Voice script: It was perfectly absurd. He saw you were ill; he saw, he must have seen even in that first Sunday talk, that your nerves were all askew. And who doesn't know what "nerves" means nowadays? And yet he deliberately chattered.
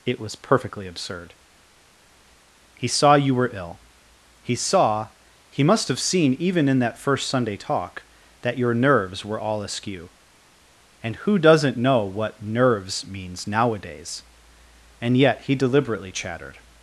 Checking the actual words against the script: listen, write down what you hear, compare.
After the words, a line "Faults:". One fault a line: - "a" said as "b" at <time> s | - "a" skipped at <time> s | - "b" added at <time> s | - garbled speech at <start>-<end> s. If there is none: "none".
It was perfectly absurd. He saw you were ill; he saw, he must have seen even in that first Sunday talk, that your nerves were all askew. And who doesn't know what "nerves" means nowadays? And yet he deliberately chattered.
Faults:
none